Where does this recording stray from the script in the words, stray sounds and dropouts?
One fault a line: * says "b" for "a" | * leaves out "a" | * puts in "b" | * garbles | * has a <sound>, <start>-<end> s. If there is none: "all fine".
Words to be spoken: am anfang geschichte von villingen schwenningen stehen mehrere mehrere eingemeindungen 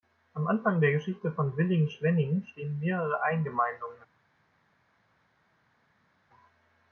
* puts in "der"
* leaves out "mehrere"